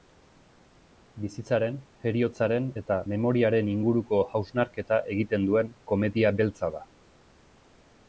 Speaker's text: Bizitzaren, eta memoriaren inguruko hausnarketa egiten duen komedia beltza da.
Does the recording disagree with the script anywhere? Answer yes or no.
yes